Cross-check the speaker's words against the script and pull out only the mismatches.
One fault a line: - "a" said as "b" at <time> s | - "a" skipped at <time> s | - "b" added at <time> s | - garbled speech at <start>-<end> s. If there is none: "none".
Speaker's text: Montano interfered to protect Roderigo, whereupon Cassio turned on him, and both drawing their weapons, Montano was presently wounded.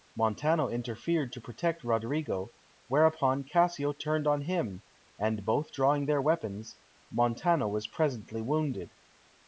none